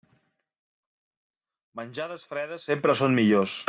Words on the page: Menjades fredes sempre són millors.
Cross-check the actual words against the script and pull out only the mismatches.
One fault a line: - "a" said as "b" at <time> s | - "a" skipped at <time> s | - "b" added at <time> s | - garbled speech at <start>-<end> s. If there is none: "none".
none